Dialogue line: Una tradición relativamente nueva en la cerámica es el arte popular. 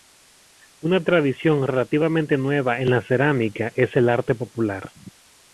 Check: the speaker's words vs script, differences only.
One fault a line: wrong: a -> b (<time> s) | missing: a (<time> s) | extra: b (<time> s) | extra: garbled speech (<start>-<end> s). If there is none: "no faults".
no faults